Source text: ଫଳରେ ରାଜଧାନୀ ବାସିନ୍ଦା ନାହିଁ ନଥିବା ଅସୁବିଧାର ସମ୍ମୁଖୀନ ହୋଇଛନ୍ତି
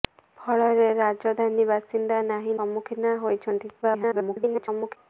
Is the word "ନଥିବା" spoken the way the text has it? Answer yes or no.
no